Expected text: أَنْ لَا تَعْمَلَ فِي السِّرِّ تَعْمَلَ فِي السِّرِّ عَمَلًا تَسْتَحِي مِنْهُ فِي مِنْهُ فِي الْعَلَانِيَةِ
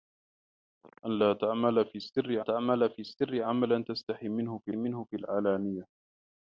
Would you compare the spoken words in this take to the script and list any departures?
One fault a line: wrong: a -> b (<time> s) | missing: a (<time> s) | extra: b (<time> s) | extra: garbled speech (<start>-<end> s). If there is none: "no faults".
no faults